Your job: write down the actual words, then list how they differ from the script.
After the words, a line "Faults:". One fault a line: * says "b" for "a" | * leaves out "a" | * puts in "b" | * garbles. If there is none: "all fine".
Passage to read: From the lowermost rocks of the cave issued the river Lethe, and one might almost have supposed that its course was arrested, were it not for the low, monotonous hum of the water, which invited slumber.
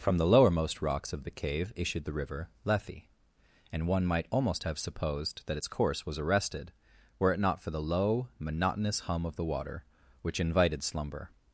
From the lowermost rocks of the cave issued the river Lethe, and one might almost have supposed that its course was arrested, were it not for the low, monotonous hum of the water, which invited slumber.
Faults:
all fine